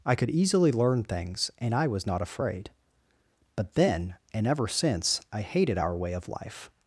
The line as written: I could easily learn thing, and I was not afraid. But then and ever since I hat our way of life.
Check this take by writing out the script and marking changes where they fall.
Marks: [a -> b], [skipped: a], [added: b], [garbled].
I could easily learn [thing, -> things] and I was not afraid. But then and ever since I [hat -> hated] our way of life.